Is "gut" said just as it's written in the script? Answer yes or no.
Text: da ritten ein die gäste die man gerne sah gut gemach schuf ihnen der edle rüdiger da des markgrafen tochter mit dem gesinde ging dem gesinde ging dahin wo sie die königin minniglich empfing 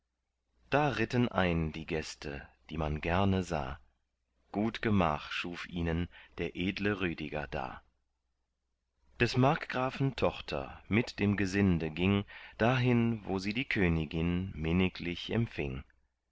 yes